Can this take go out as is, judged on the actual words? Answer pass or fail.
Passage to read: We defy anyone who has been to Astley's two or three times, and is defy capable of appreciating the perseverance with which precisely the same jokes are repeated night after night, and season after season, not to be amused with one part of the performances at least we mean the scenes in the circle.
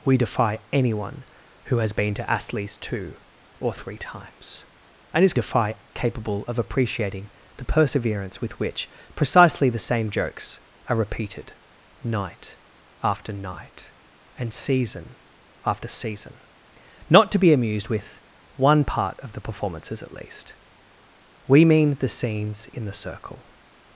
pass